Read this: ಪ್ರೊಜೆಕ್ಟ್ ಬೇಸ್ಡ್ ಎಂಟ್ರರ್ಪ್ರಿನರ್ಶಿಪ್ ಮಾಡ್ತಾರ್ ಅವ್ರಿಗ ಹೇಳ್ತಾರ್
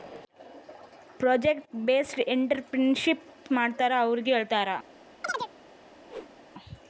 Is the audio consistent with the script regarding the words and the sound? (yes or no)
no